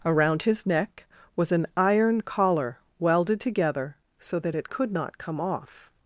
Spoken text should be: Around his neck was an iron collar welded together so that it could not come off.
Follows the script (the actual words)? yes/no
yes